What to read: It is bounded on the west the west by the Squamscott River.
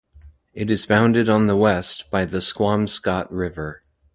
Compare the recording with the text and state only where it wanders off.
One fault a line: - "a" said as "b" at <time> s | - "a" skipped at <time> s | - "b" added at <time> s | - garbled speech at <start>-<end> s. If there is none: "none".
- "the west" skipped at 2.1 s